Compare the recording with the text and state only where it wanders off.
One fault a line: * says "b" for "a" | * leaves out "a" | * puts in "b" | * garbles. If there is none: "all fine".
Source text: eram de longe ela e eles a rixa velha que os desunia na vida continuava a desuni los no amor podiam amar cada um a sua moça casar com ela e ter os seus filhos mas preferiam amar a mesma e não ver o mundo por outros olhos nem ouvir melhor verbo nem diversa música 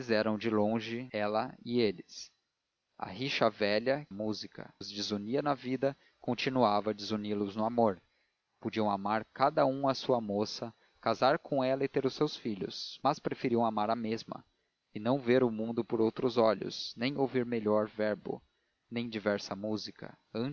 * says "música" for "que"